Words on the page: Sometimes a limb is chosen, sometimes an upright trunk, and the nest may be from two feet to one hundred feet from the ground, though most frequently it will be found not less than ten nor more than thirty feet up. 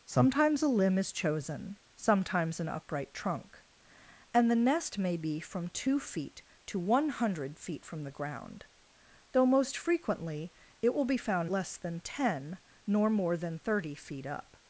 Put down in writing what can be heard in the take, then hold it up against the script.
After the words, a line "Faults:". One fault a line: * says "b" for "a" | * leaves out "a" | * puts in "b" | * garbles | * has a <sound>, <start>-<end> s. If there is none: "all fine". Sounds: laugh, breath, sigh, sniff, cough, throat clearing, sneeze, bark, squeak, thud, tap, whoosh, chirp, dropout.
Sometimes a limb is chosen, sometimes an upright trunk, and the nest may be from two feet to one hundred feet from the ground, though most frequently it will be found less than ten nor more than thirty feet up.
Faults:
* leaves out "not"